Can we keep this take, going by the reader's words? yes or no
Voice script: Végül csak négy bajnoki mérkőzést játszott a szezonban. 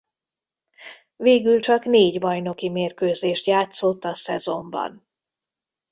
yes